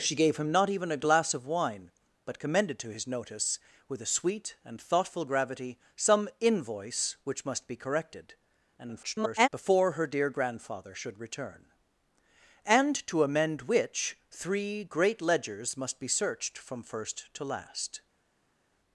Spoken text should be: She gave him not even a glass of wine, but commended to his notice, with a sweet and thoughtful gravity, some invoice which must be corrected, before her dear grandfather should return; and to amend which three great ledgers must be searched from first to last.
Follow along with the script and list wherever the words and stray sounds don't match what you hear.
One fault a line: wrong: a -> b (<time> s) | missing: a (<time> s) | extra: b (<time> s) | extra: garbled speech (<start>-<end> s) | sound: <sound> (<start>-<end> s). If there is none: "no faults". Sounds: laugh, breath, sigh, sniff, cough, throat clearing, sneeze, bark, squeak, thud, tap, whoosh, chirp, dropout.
extra: garbled speech (8.8-9.5 s)